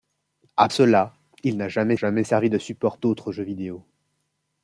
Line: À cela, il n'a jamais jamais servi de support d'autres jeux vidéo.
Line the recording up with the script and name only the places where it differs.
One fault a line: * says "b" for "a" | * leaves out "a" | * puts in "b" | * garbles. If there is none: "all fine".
all fine